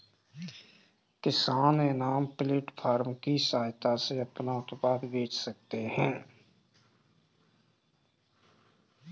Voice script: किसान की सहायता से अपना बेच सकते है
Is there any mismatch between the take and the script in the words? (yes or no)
yes